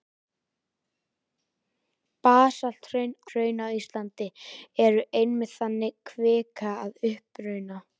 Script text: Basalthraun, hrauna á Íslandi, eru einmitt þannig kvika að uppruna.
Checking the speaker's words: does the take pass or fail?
pass